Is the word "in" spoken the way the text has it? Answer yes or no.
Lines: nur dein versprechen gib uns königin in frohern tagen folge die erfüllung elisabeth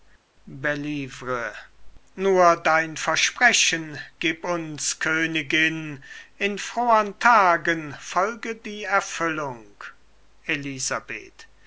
yes